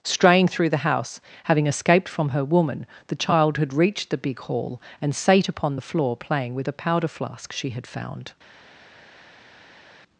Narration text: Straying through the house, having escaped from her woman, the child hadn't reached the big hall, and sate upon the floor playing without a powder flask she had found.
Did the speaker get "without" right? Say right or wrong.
wrong